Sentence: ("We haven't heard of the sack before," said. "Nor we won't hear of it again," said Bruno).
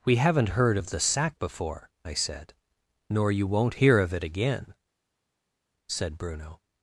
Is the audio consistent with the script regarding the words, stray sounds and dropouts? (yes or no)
no